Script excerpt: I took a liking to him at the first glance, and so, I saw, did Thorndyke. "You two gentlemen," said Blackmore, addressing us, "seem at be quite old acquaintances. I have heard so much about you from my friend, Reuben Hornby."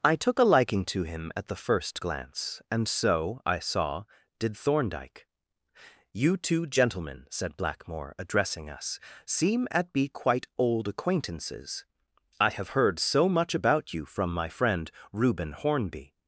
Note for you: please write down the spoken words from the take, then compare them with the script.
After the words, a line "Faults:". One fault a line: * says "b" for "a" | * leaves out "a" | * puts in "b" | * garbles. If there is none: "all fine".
I took a liking to him at the first glance, and so, I saw, did Thorndyke. "You two gentlemen," said Blackmore, addressing us, "seem at be quite old acquaintances. I have heard so much about you from my friend, Reuben Hornby."
Faults:
all fine